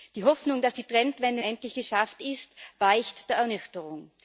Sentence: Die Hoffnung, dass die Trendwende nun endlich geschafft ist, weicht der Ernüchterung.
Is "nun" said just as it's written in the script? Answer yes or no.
no